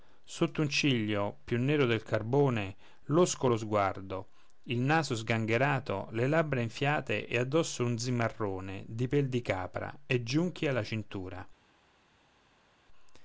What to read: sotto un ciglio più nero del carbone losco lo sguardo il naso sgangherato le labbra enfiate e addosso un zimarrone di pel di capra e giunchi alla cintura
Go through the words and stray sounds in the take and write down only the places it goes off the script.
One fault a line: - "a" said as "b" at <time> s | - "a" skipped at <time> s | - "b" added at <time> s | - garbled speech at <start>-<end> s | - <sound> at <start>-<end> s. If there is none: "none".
none